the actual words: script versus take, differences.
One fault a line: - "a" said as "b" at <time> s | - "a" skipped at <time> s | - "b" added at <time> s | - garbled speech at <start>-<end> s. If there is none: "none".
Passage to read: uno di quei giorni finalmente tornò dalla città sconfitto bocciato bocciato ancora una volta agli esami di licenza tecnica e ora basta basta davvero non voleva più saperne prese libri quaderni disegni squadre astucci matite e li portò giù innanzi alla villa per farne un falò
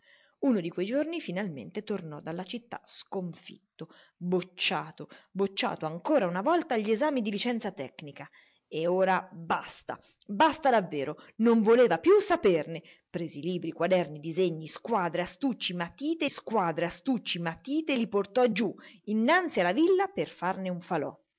- "squadre astucci matite" added at 16.3 s